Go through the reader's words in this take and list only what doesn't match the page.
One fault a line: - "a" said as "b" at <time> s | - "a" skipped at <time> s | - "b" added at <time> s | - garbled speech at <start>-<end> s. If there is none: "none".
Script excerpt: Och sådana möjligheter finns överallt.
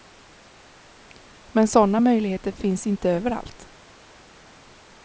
- "Och" said as "Men" at 1.5 s
- "inte" added at 2.9 s